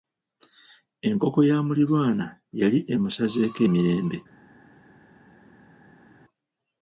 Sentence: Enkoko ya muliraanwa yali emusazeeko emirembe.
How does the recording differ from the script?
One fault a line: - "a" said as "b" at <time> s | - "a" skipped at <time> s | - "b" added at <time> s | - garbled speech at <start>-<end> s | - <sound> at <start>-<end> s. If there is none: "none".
none